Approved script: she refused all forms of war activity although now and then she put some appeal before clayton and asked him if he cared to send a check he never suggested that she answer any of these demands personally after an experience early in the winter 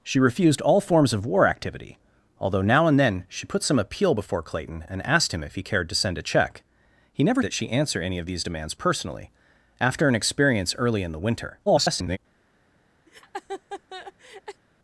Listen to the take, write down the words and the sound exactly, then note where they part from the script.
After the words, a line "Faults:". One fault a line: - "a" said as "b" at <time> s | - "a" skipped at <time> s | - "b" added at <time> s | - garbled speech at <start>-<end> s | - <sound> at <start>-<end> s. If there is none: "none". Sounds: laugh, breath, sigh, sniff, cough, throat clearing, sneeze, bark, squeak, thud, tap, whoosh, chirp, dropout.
she refused all forms of war activity although now and then she put some appeal before clayton and asked him if he cared to send a check he never that she answer any of these demands personally after an experience early in the winter [garbled]
Faults:
- "suggested" skipped at 7.4 s
- garbled speech at 11.7-12.2 s
- laugh at 13.1-14.6 s